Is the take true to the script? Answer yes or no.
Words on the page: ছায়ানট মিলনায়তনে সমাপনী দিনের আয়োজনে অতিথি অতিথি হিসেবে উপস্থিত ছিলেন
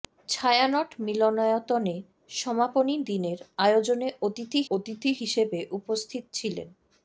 yes